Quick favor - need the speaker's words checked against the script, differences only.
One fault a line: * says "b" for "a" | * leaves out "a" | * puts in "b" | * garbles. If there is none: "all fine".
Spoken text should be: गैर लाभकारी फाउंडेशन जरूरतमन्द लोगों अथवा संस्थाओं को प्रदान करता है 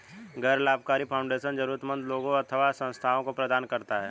all fine